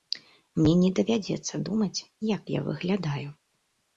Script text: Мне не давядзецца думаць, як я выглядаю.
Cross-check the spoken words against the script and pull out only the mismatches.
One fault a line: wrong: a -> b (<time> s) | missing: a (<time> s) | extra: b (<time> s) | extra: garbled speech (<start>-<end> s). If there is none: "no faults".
no faults